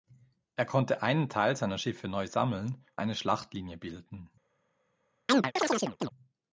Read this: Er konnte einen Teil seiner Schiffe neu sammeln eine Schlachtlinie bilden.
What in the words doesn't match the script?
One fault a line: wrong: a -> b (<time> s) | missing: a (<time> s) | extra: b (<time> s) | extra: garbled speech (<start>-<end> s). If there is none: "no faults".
no faults